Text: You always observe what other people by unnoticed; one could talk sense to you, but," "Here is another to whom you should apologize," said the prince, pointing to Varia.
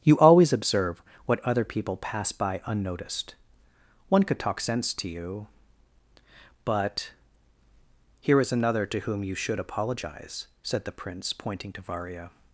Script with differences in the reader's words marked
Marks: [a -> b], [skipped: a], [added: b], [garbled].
You always observe what other people [added: pass] by unnoticed; one could talk sense to you, but," "Here is another to whom you should apologize," said the prince, pointing to Varia.